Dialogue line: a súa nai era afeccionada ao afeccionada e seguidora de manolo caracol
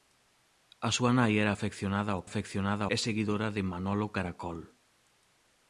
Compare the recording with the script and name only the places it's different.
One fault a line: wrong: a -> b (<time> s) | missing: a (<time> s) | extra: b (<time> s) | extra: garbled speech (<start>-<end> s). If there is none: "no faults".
no faults